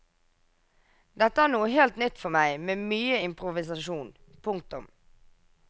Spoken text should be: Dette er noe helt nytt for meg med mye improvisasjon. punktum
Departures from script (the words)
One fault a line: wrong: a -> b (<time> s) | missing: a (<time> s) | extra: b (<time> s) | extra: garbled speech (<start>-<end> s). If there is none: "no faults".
no faults